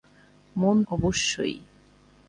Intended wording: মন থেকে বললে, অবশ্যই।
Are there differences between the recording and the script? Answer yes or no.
yes